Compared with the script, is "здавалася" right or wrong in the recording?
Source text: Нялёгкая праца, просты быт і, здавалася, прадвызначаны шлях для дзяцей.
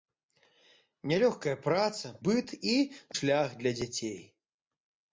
wrong